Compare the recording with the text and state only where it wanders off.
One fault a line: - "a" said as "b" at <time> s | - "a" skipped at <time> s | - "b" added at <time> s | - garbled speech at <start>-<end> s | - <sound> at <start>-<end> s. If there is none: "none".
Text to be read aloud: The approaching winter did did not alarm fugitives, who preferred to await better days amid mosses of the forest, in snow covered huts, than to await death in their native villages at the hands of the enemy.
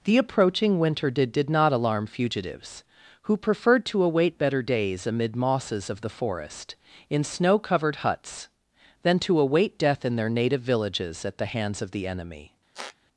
- squeak at 12.7-13.0 s